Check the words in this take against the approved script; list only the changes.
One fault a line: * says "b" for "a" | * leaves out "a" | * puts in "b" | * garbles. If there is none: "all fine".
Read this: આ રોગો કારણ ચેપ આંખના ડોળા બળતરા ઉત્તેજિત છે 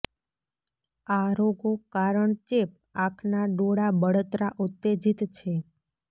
all fine